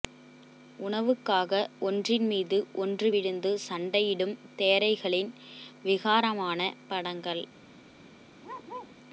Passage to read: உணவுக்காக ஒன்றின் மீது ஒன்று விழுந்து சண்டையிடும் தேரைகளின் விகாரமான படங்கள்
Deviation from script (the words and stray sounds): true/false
true